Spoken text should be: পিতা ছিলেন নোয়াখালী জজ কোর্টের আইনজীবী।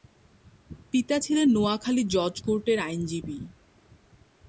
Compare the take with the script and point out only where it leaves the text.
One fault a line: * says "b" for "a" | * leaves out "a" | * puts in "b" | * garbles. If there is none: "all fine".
all fine